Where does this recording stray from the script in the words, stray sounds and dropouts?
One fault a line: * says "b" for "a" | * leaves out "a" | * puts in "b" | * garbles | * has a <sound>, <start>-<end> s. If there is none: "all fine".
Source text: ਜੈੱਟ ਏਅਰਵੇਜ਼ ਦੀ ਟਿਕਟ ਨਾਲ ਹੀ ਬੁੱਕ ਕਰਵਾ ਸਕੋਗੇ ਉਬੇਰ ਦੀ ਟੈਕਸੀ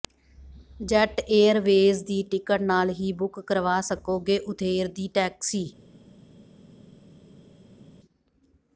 all fine